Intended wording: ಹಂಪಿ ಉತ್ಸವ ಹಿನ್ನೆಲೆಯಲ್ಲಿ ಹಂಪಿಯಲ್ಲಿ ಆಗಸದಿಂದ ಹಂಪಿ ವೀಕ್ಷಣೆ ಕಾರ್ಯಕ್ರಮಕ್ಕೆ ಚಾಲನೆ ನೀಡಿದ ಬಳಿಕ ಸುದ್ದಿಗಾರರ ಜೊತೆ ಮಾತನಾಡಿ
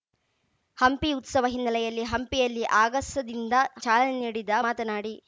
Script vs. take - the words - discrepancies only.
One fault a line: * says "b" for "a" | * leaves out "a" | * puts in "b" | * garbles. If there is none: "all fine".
* leaves out "ಹಂಪಿ ವೀಕ್ಷಣೆ ಕಾರ್ಯಕ್ರಮಕ್ಕೆ"
* leaves out "ಬಳಿಕ ಸುದ್ದಿಗಾರರ ಜೊತೆ"